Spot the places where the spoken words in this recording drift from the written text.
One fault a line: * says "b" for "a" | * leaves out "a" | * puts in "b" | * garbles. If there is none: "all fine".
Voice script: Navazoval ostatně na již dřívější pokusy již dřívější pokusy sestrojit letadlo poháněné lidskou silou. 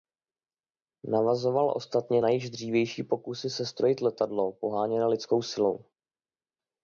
* leaves out "již dřívější pokusy"